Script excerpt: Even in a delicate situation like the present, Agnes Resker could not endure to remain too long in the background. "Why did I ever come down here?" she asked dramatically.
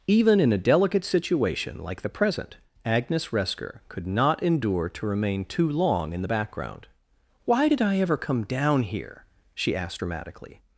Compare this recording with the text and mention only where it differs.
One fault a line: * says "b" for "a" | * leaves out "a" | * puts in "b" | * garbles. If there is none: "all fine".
all fine